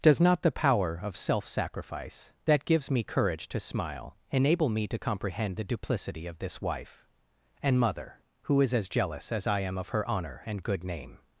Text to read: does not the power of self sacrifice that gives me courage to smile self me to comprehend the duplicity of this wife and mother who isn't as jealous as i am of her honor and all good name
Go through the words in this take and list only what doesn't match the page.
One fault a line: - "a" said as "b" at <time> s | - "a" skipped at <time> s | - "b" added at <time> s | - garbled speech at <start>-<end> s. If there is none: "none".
- "self" said as "enable" at 4.3 s
- "isn't" said as "is" at 8.6 s
- "all" skipped at 10.6 s